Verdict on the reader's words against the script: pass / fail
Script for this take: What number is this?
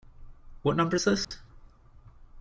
pass